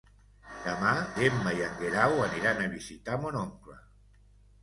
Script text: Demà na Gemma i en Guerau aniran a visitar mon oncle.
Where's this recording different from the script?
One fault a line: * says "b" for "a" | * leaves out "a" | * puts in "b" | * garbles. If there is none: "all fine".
* leaves out "na"